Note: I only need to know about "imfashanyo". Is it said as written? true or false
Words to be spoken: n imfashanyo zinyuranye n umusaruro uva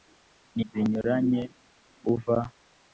false